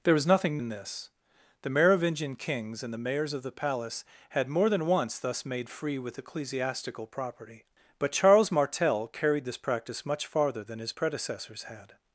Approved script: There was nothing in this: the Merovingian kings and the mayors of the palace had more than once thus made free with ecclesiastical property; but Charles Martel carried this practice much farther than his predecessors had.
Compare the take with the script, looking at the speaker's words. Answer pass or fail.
pass